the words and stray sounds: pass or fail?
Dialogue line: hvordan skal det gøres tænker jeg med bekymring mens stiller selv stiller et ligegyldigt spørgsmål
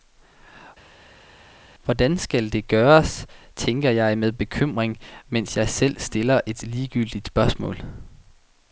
fail